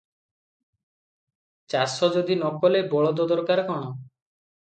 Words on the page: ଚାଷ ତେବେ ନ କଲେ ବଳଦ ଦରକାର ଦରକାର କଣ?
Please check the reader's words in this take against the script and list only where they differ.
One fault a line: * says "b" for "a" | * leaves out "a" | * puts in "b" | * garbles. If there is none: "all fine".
* says "ଯଦି" for "ତେବେ"
* leaves out "ଦରକାର"